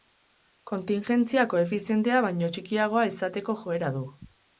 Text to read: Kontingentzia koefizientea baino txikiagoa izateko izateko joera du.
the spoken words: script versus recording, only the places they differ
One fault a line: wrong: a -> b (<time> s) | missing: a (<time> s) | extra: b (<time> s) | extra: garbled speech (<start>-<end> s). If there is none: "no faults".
missing: izateko (3.6 s)